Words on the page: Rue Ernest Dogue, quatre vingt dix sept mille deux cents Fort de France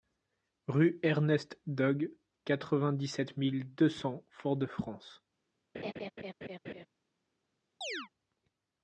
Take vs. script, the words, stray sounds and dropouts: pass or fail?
fail